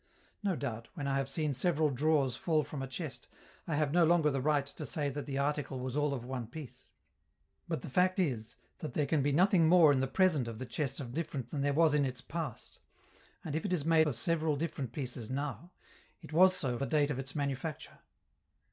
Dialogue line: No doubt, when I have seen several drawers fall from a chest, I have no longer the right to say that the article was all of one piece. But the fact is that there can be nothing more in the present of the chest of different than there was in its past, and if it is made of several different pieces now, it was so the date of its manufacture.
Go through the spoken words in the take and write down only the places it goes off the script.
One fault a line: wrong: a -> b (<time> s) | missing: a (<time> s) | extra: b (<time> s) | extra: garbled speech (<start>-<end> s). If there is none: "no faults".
no faults